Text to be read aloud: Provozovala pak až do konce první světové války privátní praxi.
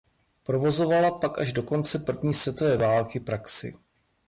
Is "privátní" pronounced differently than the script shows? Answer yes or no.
yes